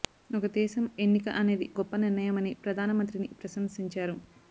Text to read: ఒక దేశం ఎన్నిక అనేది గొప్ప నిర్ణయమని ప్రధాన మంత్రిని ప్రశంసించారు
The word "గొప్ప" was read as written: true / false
true